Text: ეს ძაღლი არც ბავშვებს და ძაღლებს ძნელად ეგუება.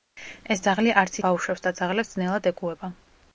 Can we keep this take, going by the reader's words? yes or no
yes